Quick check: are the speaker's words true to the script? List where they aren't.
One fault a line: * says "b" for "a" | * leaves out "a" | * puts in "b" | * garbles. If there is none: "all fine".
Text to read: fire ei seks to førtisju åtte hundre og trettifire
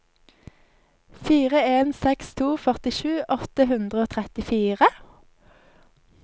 * says "en" for "ei"